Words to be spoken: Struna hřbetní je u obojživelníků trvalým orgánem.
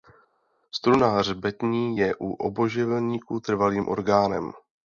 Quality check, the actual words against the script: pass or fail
pass